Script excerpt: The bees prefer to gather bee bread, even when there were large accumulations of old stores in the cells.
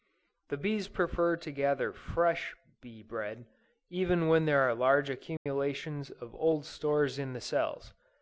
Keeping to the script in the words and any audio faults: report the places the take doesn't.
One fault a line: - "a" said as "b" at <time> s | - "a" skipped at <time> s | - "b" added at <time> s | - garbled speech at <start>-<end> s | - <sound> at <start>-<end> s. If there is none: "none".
- "fresh" added at 1.9 s
- "were" said as "are" at 4.6 s
- dropout at 5.4-5.5 s